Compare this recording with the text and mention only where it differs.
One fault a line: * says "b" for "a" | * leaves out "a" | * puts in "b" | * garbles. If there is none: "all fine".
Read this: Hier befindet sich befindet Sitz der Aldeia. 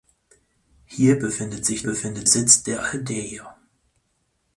all fine